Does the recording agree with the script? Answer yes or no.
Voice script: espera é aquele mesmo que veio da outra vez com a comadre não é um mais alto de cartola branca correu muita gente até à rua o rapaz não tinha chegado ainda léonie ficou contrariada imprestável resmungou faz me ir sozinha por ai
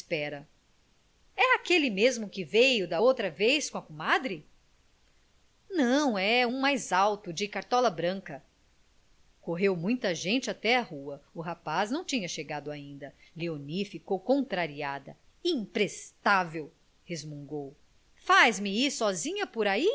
yes